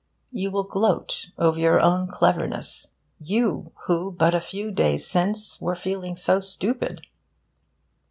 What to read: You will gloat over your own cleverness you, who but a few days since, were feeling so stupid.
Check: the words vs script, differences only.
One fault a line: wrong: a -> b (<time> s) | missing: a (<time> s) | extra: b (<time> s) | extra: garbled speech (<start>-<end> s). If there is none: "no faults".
no faults